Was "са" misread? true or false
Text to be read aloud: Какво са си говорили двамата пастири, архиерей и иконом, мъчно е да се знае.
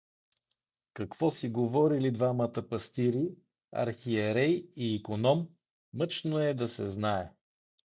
true